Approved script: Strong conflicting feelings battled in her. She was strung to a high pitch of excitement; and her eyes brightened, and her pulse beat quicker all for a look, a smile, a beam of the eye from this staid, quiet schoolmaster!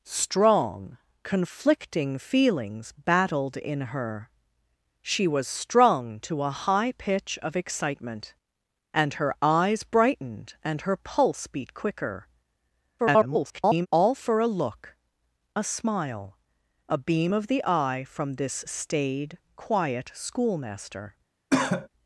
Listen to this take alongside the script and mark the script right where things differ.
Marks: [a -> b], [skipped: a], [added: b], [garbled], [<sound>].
Strong conflicting feelings battled in her. She was strung to a high pitch of excitement; and her eyes brightened, and her pulse beat quicker [garbled] all for a look, a smile, a beam of the eye from this staid, quiet schoolmaster! [cough]